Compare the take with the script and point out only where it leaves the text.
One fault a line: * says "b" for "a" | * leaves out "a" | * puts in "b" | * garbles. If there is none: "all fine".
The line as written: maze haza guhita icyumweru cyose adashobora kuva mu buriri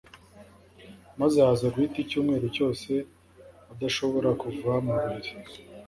all fine